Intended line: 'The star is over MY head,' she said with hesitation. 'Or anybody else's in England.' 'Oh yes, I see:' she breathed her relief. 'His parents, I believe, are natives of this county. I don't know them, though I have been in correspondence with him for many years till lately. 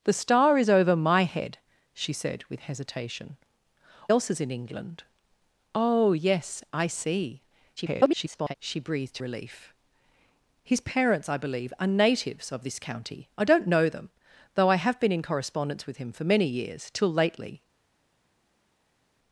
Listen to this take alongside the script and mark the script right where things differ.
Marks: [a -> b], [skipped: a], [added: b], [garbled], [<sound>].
'The star is over MY head,' she said with hesitation. [skipped: 'Or anybody] else's in England.' 'Oh yes, I see:' [garbled] she breathed [skipped: her] relief. 'His parents, I believe, are natives of this county. I don't know them, though I have been in correspondence with him for many years till lately.